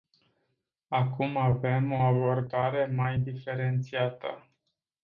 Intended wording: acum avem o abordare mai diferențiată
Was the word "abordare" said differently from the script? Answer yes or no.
no